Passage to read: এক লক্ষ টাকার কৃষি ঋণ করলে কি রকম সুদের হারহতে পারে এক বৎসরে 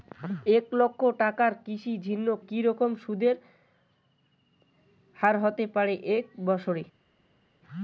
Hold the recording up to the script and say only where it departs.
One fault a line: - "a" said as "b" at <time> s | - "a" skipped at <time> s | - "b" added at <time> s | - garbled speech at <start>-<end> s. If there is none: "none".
- "করলে" skipped at 2.2 s